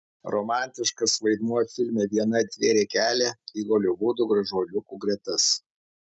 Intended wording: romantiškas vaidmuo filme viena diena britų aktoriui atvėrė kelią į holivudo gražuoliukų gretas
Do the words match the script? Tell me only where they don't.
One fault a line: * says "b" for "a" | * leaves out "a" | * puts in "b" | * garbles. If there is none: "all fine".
* leaves out "diena britų aktoriui"